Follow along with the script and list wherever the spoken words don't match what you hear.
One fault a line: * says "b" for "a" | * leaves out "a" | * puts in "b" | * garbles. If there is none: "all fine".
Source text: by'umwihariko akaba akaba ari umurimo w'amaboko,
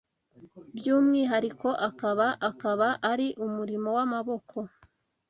all fine